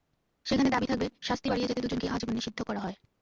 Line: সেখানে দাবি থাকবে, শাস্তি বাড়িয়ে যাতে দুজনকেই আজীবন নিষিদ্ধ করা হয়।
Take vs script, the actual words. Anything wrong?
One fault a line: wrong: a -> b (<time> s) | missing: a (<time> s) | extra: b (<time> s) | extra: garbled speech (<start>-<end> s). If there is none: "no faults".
no faults